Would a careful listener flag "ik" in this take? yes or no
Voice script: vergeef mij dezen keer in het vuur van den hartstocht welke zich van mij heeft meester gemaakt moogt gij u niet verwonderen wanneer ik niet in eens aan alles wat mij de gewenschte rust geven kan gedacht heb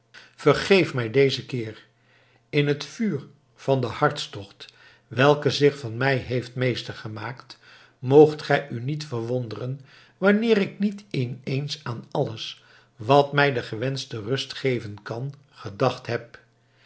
no